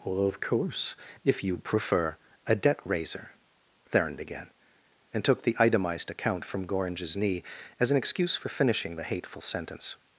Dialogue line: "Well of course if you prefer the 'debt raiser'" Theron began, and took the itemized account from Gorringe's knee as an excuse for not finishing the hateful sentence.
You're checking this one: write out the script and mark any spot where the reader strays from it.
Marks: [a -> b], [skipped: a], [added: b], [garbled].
"Well of course if you prefer [the -> a] 'debt raiser'" Theron began, and took the itemized account from Gorringe's knee as an excuse for [skipped: not] finishing the hateful sentence.